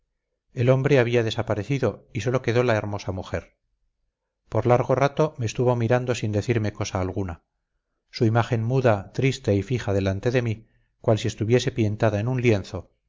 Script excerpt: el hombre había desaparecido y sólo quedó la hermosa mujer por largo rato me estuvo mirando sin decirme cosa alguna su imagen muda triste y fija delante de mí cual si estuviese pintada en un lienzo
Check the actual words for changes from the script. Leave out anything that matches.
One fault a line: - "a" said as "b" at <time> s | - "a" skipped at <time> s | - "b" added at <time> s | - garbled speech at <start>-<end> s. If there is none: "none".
none